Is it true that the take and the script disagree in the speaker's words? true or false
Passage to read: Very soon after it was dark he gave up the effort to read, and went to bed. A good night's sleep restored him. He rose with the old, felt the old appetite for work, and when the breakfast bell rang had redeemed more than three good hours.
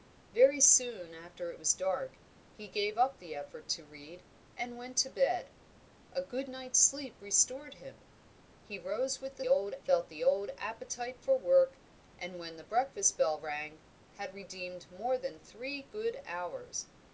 false